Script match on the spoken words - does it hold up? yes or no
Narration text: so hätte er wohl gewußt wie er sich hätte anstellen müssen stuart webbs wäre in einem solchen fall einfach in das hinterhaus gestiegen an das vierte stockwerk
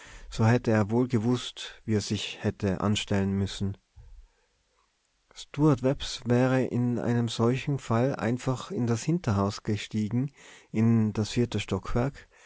no